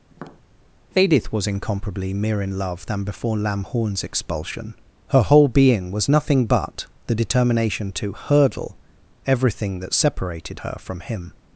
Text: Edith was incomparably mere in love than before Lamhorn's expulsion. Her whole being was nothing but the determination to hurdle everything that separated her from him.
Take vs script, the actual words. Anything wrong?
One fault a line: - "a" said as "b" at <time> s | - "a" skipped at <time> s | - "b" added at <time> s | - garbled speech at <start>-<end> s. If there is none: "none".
none